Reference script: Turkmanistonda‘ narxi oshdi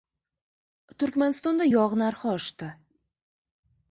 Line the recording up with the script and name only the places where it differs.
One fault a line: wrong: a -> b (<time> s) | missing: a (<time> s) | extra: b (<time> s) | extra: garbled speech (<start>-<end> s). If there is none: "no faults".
extra: yog (1.7 s)